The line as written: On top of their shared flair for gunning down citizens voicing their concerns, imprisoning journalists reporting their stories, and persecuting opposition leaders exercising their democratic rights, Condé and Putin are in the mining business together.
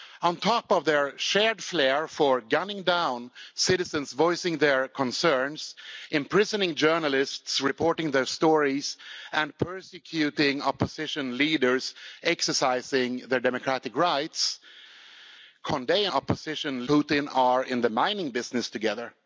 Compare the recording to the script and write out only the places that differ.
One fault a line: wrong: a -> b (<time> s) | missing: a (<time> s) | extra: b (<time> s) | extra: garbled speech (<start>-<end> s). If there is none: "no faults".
wrong: and -> opposition (16.1 s)